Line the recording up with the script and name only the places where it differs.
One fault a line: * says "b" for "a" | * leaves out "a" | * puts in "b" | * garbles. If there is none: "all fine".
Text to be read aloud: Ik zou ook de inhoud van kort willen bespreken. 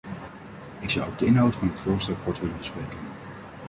* puts in "het voorstel"